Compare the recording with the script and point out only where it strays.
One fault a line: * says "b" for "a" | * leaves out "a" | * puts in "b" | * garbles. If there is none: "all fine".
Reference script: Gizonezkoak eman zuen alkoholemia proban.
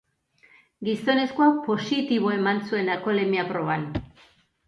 * puts in "positibo"